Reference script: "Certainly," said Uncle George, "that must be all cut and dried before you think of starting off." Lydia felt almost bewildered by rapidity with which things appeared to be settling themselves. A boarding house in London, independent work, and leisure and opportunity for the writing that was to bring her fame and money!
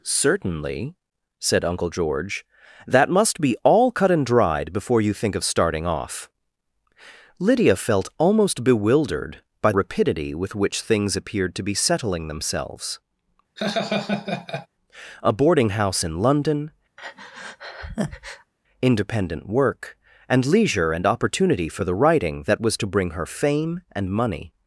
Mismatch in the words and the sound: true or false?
true